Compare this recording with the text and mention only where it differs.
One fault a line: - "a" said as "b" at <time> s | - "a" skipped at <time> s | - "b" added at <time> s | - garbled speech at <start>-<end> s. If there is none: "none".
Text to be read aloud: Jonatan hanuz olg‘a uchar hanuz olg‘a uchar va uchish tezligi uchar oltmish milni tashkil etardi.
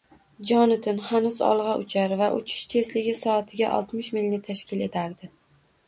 - "hanuz olg‘a uchar" skipped at 2.1 s
- "uchar" said as "soatiga" at 3.2 s